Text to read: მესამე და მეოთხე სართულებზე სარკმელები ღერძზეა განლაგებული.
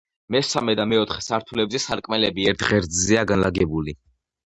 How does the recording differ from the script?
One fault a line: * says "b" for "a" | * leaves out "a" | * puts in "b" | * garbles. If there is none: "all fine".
* puts in "ერთ"